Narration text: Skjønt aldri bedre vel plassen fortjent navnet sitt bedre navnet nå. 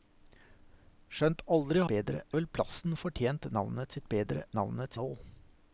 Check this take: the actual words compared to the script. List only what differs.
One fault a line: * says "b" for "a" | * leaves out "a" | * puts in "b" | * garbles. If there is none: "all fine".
all fine